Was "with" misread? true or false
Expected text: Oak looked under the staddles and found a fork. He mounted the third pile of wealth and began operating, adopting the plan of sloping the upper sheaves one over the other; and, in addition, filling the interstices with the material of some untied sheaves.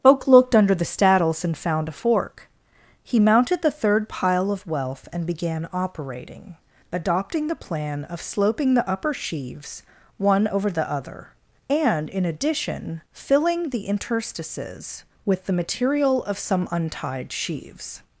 false